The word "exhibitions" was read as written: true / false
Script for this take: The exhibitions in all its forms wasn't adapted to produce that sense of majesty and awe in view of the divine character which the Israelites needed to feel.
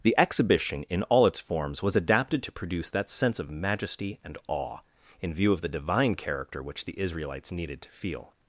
false